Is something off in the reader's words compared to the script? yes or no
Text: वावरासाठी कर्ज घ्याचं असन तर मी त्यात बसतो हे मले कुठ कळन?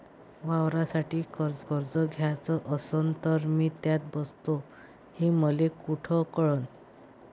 yes